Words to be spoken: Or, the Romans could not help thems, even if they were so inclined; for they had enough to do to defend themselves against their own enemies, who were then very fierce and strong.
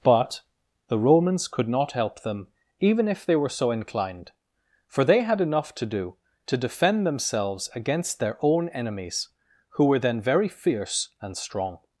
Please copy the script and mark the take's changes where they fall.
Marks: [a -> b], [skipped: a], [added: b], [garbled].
[Or, -> But] the Romans could not help [thems, -> them] even if they were so inclined; for they had enough to do to defend themselves against their own enemies, who were then very fierce and strong.